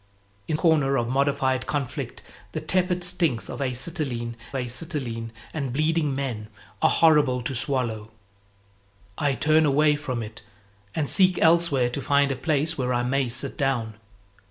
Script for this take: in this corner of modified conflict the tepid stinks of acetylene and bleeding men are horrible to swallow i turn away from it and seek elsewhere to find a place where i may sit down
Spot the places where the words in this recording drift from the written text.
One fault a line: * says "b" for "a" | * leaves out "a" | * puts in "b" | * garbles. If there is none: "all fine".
* leaves out "this"
* puts in "acetylene"